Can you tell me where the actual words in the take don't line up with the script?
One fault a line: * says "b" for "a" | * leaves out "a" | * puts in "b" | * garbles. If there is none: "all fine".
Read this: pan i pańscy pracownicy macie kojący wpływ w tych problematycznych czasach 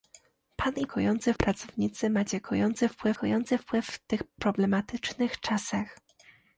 * says "kojący" for "pańscy"
* puts in "kojący wpływ"